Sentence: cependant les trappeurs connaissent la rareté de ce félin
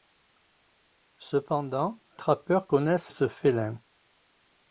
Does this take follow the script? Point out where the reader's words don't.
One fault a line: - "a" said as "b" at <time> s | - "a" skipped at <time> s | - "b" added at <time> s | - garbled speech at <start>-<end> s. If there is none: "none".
- "les" skipped at 2.0 s
- "la rareté de" skipped at 3.1 s